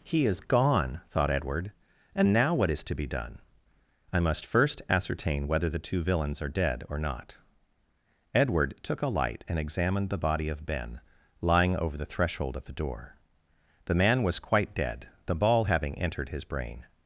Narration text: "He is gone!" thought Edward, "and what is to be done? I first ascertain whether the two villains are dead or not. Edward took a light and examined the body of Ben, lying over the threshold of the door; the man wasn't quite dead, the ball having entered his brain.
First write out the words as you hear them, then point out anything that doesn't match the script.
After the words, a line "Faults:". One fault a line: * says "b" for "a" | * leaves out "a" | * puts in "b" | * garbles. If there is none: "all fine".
"He is gone!" thought Edward, "and now what is to be done? I must first ascertain whether the two villains are dead or not. Edward took a light and examined the body of Ben, lying over the threshold of the door; the man was quite dead, the ball having entered his brain.
Faults:
* puts in "now"
* puts in "must"
* says "was" for "wasn't"